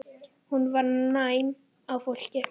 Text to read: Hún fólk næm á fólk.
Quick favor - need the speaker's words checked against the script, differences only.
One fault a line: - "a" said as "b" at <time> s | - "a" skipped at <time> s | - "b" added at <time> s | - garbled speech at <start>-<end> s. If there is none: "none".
- "fólk" said as "var" at 0.7 s